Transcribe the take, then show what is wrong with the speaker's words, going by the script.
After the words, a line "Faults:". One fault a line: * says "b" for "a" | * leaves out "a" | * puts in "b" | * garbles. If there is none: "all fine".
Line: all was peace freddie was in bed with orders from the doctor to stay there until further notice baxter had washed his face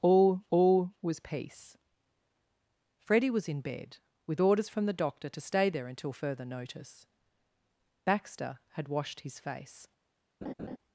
all all was peace freddie was in bed with orders from the doctor to stay there until further notice baxter had washed his face
Faults:
* puts in "all"